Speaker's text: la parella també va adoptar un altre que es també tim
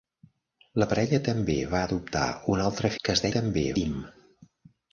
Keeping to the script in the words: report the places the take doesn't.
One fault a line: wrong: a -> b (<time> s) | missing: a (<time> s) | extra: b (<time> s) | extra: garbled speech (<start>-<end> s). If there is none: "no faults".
no faults